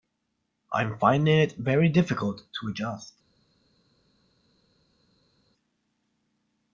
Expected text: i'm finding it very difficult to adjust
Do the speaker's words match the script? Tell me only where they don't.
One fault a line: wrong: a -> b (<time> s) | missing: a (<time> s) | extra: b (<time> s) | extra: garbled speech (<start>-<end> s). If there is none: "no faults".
no faults